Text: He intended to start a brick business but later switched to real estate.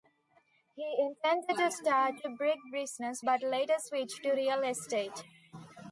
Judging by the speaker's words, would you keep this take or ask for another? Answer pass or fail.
pass